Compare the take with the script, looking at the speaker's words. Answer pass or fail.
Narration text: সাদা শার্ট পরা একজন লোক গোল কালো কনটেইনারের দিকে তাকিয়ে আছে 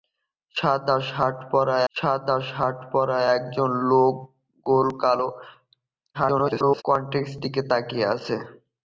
fail